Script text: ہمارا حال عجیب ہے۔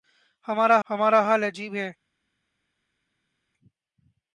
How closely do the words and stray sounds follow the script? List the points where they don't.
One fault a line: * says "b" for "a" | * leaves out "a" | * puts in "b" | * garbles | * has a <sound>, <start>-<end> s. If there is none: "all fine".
* puts in "ہمارا"